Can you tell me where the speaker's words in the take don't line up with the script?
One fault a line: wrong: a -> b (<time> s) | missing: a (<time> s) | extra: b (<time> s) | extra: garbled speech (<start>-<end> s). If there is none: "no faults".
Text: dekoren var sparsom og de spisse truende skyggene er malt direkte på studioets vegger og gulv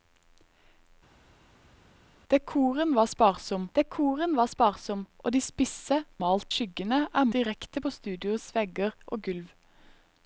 extra: dekoren var sparsom (3.8 s)
wrong: truende -> malt (6.2 s)
missing: malt (7.3 s)